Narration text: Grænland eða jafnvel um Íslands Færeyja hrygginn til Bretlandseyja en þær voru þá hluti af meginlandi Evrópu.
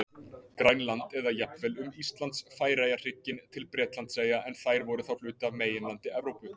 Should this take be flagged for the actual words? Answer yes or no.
no